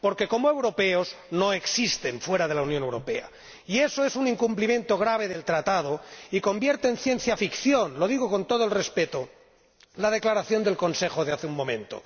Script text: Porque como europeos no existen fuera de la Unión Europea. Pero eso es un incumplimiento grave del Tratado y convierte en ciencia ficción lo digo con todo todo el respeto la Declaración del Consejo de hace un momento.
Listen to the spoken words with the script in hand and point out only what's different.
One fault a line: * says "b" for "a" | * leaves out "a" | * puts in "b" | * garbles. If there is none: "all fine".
* says "Y" for "Pero"
* leaves out "todo"